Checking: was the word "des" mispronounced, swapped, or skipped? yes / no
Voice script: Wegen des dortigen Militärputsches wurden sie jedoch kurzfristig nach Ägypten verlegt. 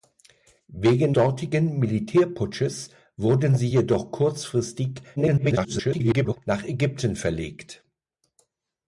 yes